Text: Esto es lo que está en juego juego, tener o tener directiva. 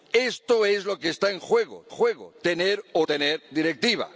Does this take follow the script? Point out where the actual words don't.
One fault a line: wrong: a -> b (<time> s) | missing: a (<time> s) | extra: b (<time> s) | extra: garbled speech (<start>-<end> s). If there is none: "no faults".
no faults